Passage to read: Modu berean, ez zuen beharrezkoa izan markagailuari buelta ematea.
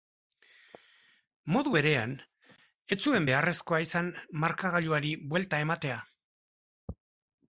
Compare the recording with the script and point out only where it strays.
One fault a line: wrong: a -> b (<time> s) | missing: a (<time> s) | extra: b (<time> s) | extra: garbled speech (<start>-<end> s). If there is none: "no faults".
no faults